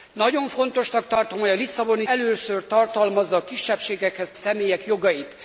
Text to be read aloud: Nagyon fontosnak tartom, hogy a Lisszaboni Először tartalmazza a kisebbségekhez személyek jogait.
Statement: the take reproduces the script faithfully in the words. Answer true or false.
true